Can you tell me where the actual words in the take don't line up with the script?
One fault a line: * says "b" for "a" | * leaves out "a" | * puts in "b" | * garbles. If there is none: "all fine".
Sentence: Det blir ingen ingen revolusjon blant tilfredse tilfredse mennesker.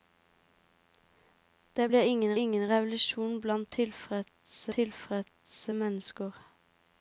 all fine